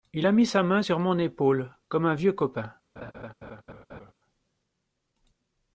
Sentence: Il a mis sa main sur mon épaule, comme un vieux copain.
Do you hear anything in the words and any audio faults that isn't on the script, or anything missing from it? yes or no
yes